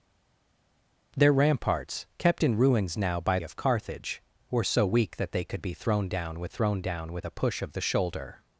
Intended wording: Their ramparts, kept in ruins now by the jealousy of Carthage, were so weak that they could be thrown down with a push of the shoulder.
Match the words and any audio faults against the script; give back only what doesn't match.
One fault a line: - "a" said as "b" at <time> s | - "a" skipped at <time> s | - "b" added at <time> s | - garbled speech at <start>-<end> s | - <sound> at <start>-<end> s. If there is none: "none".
- "the jealousy" skipped at 3.4 s
- "thrown down with" added at 6.5 s